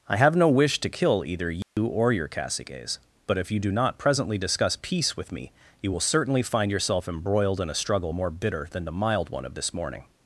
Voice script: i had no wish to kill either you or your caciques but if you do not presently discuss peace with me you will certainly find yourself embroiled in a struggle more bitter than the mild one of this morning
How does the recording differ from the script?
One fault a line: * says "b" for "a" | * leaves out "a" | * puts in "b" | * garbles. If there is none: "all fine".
* says "have" for "had"